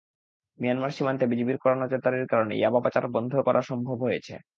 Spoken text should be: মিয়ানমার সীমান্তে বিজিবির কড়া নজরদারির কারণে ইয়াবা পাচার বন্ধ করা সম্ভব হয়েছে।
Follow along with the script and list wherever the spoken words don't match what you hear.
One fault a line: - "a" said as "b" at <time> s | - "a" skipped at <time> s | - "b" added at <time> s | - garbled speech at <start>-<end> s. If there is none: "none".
none